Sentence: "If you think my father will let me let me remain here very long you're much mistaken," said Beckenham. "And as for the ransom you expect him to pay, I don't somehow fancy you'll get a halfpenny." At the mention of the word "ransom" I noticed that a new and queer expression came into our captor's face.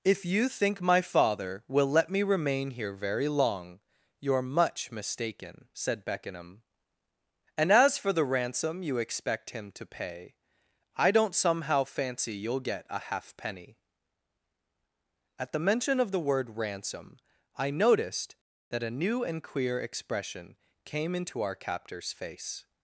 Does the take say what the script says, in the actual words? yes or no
no